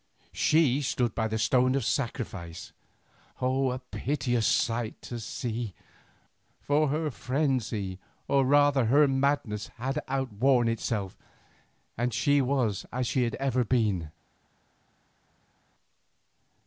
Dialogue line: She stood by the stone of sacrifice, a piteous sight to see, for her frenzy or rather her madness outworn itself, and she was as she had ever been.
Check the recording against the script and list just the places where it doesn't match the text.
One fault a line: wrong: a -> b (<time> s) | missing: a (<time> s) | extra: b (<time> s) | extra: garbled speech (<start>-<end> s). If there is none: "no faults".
extra: had (9.8 s)